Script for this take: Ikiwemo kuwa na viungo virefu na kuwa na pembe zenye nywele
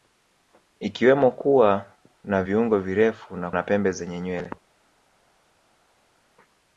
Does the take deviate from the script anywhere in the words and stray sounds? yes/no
yes